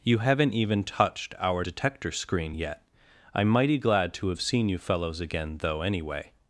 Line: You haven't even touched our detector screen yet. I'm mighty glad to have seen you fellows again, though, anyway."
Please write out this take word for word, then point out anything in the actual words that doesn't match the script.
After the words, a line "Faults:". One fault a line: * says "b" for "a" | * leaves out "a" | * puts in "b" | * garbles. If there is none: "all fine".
You haven't even touched our detector screen yet. I'm mighty glad to have seen you fellows again, though, anyway."
Faults:
all fine